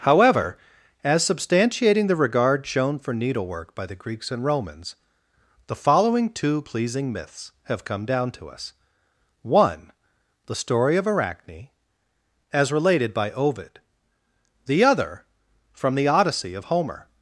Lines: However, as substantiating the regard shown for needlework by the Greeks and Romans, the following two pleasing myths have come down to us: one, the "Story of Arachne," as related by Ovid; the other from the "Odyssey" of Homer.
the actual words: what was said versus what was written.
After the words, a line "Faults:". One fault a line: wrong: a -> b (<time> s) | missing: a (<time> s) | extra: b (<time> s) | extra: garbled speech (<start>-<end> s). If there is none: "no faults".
However, as substantiating the regard shown for needlework by the Greeks and Romans, the following two pleasing myths have come down to us: one, the "Story of Arachne," as related by Ovid; the other from the "Odyssey" of Homer.
Faults:
no faults